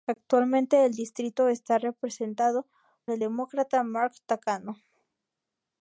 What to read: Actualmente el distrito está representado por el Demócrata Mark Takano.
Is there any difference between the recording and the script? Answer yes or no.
yes